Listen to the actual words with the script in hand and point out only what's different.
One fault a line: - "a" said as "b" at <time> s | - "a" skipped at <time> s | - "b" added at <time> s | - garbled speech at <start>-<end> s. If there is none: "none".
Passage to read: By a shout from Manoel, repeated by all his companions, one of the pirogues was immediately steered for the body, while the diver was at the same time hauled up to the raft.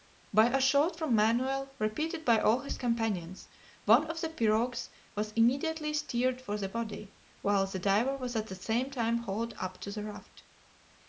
none